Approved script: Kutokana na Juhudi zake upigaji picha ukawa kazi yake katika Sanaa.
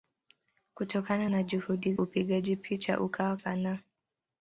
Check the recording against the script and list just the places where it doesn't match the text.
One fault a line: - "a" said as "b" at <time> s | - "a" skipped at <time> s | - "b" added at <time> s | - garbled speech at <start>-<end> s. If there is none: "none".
- "zake" skipped at 1.9 s
- "kazi yake katika" skipped at 3.4 s